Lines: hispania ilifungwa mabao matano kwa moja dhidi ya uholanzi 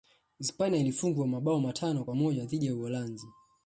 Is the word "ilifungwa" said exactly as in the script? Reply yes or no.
yes